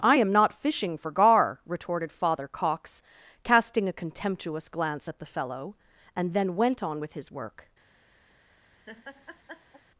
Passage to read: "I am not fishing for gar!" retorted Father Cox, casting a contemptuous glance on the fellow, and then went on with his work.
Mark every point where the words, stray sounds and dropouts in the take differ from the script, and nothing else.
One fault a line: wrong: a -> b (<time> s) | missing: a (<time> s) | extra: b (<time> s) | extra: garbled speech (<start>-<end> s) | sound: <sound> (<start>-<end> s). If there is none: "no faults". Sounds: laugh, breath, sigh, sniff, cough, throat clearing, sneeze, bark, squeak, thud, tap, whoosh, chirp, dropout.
wrong: on -> at (5.1 s)
sound: laugh (8.9-9.8 s)